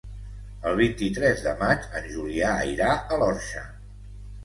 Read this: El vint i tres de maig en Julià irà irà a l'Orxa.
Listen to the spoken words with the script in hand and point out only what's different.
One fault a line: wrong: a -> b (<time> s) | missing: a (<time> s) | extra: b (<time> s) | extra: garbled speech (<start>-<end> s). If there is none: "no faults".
missing: irà (2.9 s)